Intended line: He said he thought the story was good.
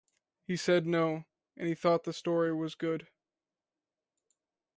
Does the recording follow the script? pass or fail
fail